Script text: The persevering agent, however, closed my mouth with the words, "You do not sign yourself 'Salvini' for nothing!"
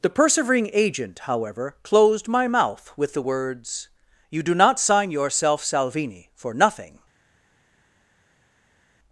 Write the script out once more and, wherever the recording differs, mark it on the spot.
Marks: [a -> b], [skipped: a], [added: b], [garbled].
The persevering agent, however, closed my mouth with the words, "You do not sign yourself 'Salvini' for nothing!"